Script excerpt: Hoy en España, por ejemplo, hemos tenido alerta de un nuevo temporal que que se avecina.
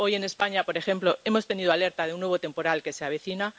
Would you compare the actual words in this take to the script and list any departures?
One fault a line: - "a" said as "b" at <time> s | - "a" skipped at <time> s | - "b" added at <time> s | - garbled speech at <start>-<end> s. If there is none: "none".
- "que" skipped at 2.9 s